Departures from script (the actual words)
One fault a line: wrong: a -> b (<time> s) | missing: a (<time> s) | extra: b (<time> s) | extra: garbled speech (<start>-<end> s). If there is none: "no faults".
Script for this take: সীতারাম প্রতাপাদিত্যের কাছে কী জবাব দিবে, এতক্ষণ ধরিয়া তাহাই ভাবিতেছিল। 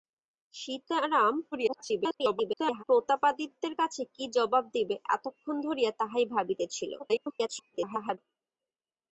extra: garbled speech (1.5-2.8 s)
extra: garbled speech (7.0-8.2 s)